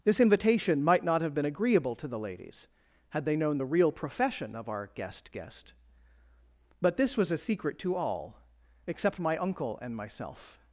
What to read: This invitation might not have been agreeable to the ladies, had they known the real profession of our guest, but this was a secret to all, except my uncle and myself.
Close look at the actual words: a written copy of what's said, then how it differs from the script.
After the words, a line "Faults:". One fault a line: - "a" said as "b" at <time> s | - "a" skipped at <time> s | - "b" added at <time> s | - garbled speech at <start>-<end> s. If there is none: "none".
This invitation might not have been agreeable to the ladies, had they known the real profession of our guest guest, but this was a secret to all, except my uncle and myself.
Faults:
- "guest" added at 5.3 s